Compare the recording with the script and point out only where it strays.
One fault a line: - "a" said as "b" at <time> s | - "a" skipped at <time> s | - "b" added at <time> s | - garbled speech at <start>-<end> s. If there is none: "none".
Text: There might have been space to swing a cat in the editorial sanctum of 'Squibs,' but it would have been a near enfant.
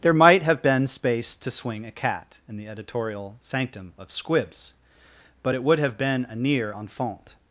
none